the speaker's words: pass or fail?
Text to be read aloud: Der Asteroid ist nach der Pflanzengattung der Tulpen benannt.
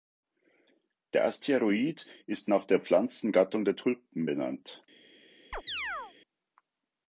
pass